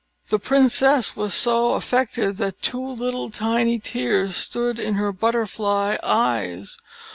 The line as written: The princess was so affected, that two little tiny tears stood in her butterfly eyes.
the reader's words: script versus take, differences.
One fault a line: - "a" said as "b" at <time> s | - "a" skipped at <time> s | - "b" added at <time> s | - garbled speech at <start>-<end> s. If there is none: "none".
none